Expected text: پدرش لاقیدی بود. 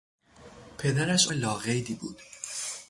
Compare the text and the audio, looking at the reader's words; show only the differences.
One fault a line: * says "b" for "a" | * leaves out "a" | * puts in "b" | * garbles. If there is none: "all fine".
all fine